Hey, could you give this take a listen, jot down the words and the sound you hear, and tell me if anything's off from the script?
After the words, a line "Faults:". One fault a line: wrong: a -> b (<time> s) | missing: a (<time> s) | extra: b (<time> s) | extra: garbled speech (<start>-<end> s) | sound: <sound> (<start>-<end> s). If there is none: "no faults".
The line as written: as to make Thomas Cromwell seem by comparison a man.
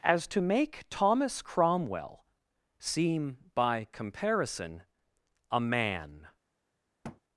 as to make Thomas Cromwell seem by comparison a man.
Faults:
sound: thud (7.0-7.2 s)